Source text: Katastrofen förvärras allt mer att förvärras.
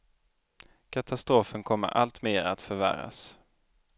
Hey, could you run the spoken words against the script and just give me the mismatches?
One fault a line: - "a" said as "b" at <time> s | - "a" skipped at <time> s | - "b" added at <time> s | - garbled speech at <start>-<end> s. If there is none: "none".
- "förvärras" said as "kommer" at 1.6 s